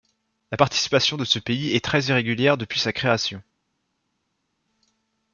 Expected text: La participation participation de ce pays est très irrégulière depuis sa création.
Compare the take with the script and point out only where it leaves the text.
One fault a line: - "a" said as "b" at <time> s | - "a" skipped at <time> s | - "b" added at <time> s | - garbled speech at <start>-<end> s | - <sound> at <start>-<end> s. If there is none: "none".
- "participation" skipped at 1.2 s